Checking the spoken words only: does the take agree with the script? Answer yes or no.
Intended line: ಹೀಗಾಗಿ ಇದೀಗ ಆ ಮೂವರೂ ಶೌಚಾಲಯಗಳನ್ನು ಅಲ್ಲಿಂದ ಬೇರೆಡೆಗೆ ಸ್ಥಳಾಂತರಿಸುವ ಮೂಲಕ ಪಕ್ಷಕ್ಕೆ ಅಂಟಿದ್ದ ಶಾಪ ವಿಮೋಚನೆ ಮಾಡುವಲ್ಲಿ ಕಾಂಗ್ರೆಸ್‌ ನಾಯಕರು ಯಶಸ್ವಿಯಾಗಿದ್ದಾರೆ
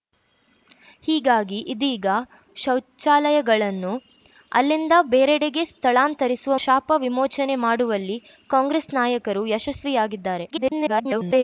no